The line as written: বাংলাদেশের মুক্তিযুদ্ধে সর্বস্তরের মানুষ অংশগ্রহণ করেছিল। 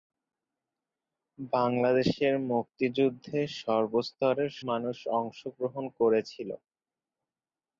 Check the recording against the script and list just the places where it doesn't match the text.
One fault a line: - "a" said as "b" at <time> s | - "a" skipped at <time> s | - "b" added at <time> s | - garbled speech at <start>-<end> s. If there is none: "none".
none